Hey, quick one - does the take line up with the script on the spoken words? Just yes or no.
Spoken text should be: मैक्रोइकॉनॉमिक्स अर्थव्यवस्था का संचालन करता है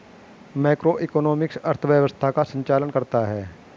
yes